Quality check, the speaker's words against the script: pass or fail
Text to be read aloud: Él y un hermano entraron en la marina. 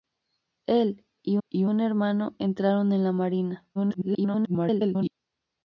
fail